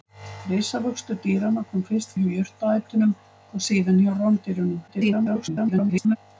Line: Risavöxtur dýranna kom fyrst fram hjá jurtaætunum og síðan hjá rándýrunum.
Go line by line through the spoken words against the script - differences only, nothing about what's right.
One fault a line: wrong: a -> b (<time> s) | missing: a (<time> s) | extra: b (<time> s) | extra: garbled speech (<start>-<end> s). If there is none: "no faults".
missing: fram (2.2 s)
extra: garbled speech (4.9-6.2 s)